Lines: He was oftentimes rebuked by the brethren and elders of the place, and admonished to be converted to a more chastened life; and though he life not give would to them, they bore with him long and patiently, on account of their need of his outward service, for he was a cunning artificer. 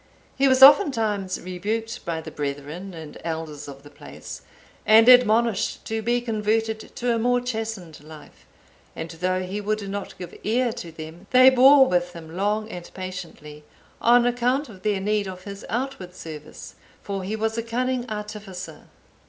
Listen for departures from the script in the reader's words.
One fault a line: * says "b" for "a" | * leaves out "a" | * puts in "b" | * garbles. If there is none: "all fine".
* says "would" for "life"
* says "ear" for "would"